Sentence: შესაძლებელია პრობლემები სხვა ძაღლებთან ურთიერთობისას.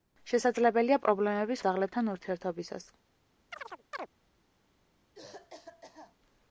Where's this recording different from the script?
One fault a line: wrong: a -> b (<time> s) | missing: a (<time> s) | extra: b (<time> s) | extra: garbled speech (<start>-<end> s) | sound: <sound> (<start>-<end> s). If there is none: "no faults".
missing: სხვა (1.6 s)
sound: chirp (3.5-4.1 s)
sound: cough (5.1-6.2 s)